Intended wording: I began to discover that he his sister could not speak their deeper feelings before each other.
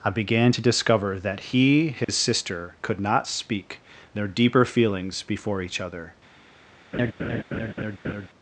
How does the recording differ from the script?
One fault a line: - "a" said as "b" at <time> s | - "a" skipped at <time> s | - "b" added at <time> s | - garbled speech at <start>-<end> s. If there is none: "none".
none